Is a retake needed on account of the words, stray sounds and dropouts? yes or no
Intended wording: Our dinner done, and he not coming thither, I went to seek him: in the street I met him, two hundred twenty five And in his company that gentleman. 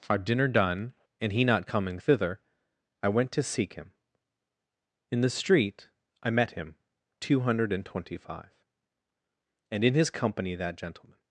yes